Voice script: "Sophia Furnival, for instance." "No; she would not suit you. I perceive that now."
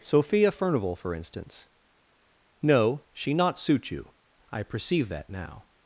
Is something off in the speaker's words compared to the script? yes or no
yes